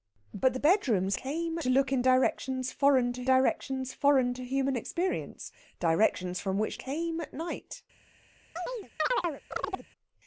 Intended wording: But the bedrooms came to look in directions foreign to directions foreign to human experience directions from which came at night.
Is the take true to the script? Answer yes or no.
yes